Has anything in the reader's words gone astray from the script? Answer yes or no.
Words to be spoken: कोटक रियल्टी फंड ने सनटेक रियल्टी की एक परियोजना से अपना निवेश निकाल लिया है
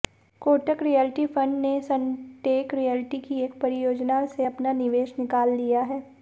no